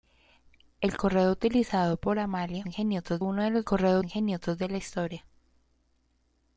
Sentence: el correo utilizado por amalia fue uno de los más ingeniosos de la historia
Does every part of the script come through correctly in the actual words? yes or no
no